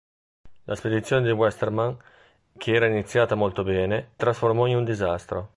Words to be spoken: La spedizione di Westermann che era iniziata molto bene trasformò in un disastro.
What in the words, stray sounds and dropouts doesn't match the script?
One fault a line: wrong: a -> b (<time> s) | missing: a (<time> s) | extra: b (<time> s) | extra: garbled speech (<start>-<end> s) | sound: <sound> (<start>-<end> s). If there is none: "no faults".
no faults